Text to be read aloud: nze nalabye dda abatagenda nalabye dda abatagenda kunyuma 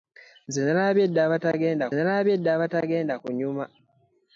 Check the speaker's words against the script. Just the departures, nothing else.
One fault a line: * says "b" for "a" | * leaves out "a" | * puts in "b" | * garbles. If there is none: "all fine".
all fine